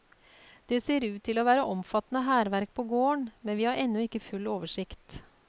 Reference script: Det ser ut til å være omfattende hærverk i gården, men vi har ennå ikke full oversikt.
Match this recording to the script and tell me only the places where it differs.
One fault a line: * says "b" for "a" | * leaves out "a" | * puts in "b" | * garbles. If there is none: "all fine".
* says "på" for "i"